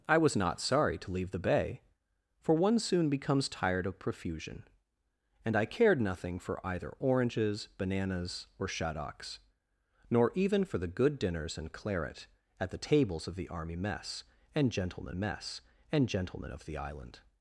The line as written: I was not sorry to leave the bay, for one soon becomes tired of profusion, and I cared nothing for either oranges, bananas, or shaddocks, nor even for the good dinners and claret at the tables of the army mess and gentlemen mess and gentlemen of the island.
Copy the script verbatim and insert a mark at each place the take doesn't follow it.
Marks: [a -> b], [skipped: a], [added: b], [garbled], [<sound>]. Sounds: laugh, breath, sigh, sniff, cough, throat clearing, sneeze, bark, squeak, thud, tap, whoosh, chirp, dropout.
I was not sorry to leave the bay, for one soon becomes tired of profusion, and I cared nothing for either oranges, bananas, or shaddocks, nor even for the good dinners and claret at the tables of the army mess and gentlemen mess and gentlemen of the island.